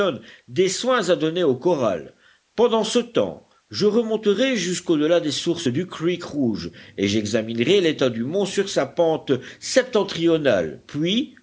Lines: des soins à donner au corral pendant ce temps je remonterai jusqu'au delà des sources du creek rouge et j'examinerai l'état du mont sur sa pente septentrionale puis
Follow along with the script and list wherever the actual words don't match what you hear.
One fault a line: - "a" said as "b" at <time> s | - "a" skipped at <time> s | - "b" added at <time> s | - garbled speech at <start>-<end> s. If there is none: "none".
none